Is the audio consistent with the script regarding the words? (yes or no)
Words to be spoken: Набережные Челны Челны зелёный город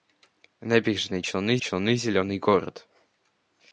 yes